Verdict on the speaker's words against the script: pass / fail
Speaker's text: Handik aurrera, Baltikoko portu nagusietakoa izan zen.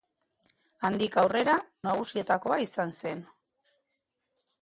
fail